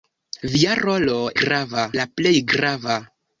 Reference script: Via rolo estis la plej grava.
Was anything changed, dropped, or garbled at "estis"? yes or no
yes